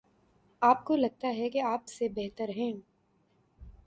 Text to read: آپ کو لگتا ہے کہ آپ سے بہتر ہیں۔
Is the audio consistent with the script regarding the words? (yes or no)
yes